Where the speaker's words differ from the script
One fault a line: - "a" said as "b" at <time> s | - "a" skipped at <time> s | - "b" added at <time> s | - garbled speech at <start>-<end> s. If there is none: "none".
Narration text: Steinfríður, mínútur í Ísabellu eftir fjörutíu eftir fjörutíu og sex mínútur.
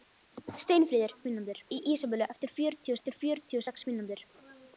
none